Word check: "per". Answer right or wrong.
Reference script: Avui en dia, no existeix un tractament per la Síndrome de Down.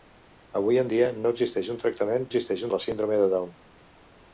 wrong